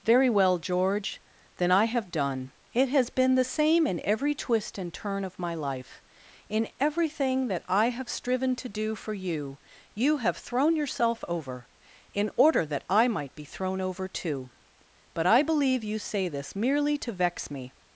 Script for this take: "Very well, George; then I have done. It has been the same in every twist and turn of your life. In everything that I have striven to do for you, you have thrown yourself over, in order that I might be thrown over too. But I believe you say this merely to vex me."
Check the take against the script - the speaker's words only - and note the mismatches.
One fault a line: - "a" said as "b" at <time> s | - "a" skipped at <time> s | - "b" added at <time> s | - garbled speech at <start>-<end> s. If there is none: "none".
- "your" said as "my" at 5.4 s